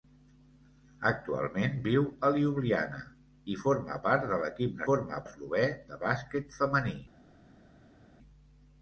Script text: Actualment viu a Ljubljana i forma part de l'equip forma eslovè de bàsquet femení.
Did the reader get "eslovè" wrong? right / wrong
right